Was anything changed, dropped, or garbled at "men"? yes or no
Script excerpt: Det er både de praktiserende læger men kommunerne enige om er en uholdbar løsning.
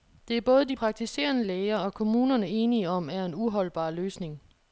yes